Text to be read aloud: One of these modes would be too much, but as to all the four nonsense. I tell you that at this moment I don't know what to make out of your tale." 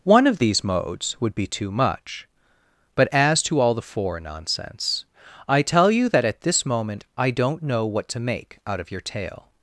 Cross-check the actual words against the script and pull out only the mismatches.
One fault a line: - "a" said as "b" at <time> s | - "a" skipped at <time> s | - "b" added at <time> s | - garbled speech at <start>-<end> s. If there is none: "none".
none